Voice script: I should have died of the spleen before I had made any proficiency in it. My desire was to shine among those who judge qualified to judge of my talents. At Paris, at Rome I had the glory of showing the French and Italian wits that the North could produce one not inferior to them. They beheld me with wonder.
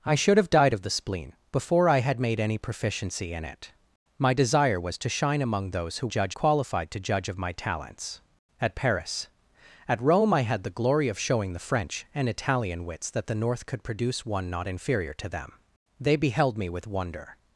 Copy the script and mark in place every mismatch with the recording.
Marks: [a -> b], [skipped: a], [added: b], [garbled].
I should have died of the spleen before I had made any proficiency in it. My desire was to shine among those who judge qualified to judge of my talents. At Paris, at Rome I had the glory of showing the French and Italian wits that the North could produce one not inferior to them. They beheld me with wonder.